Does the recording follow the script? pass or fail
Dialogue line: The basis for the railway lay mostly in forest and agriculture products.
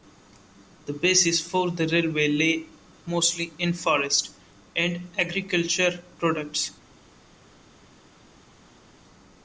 pass